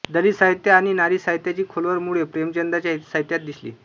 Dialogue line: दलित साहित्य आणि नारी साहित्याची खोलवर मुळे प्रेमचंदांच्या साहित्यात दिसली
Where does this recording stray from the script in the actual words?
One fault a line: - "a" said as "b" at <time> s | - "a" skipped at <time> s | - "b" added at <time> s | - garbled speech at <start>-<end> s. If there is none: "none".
none